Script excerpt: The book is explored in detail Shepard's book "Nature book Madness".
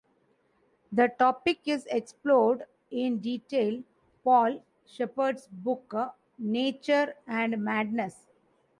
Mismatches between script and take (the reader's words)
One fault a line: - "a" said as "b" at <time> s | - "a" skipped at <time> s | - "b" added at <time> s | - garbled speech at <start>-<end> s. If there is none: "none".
- "book" said as "topic" at 1.1 s
- "Paul" added at 4.2 s
- "book" said as "and" at 7.3 s